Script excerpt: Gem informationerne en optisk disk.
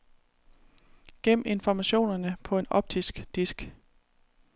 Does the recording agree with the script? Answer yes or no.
no